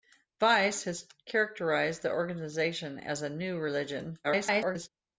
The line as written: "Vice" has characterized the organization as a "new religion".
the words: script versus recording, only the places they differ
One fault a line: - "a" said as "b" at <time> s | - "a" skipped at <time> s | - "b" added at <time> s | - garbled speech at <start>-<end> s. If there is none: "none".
- garbled speech at 4.2-4.9 s